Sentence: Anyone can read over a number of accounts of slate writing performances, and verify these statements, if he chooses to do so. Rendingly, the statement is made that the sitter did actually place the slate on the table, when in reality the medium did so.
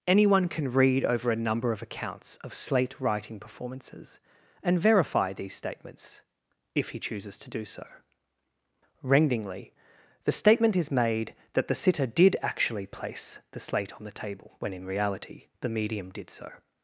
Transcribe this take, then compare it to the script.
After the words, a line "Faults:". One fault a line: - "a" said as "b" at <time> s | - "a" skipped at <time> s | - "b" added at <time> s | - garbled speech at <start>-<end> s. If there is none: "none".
Anyone can read over a number of accounts of slate writing performances, and verify these statements, if he chooses to do so. Rendingly, the statement is made that the sitter did actually place the slate on the table, when in reality the medium did so.
Faults:
none